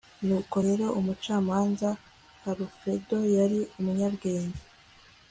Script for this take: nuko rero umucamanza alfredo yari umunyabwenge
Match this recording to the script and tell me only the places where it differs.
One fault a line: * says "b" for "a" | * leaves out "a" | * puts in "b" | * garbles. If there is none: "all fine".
all fine